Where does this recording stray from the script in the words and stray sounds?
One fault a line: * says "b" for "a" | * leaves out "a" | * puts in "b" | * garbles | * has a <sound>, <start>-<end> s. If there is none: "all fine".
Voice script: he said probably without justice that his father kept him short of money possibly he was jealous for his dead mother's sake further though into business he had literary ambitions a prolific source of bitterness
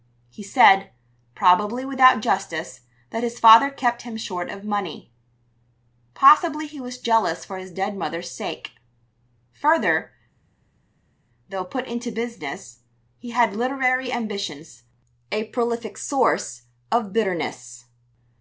* puts in "put"